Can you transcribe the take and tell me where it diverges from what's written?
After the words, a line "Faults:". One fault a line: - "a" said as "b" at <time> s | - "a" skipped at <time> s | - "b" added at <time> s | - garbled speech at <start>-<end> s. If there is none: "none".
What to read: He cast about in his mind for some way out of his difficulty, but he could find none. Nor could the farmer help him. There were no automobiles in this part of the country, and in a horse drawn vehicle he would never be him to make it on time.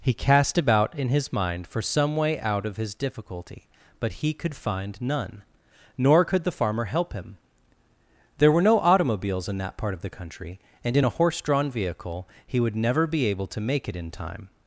He cast about in his mind for some way out of his difficulty, but he could find none. Nor could the farmer help him. There were no automobiles in that part of the country, and in a horse drawn vehicle he would never be able to make it in time.
Faults:
- "this" said as "that" at 9.6 s
- "him" said as "able" at 13.3 s
- "on" said as "in" at 14.0 s